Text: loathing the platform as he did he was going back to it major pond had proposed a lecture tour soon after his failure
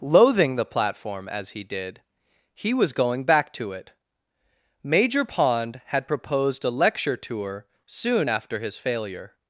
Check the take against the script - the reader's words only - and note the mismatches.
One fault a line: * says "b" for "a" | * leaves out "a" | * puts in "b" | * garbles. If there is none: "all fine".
all fine